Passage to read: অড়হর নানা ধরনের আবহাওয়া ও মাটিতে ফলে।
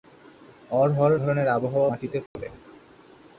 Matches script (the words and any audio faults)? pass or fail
fail